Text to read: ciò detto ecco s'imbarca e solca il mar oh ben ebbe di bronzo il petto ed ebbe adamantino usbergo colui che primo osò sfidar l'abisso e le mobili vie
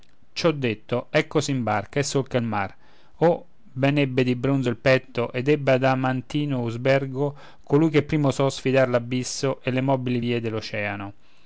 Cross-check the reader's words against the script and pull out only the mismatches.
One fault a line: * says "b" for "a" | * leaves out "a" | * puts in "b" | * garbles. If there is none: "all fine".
all fine